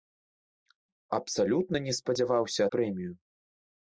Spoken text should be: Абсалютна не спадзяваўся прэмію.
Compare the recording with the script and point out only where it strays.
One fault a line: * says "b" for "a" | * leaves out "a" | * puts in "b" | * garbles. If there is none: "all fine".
all fine